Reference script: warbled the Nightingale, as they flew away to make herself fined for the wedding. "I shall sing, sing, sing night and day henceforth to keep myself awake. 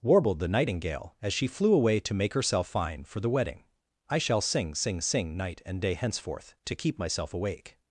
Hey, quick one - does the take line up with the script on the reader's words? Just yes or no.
no